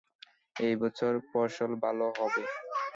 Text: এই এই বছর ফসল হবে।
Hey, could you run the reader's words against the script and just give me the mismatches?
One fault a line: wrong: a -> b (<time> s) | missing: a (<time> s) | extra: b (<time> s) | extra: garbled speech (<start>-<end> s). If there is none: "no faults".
missing: এই (0.7 s)
extra: ভালো (1.8 s)